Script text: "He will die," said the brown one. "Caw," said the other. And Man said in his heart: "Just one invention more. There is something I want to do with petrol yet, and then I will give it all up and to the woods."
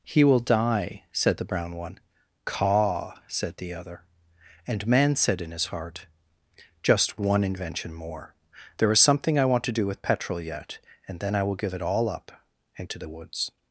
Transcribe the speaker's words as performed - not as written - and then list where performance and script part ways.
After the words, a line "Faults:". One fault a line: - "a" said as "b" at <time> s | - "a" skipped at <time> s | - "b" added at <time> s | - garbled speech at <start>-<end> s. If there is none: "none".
"He will die," said the brown one. "Caw," said the other. And Man said in his heart: "Just one invention more. There is something I want to do with petrol yet, and then I will give it all up and to the woods."
Faults:
none